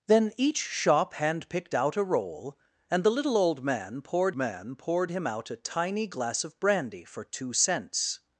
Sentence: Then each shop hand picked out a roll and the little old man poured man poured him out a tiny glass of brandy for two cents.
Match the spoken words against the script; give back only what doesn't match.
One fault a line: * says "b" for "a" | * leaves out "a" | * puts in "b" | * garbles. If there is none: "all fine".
all fine